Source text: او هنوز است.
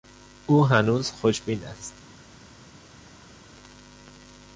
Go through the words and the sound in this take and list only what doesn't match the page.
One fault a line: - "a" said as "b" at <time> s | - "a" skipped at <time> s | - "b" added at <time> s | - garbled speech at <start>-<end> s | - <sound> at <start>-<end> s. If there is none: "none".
- "خوشبین" added at 1.1 s